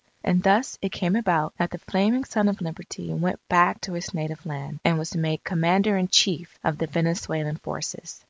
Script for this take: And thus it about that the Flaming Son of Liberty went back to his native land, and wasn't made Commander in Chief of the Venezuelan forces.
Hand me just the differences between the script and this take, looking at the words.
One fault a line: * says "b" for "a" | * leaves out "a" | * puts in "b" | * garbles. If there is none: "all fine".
* puts in "came"
* says "was" for "wasn't"